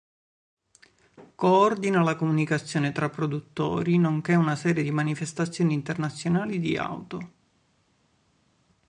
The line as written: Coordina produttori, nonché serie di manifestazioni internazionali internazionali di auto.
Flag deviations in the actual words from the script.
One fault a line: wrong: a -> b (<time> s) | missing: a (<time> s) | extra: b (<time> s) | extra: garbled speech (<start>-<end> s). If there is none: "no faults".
extra: la comunicazione tra (2.0 s)
extra: una (4.3 s)
missing: internazionali (6.6 s)